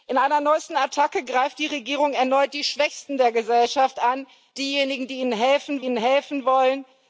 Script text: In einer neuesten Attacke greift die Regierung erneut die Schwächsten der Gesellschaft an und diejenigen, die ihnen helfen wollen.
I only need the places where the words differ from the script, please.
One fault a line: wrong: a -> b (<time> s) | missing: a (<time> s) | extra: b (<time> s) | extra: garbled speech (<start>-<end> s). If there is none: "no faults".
missing: und (4.3 s)
extra: ihnen helfen (5.8 s)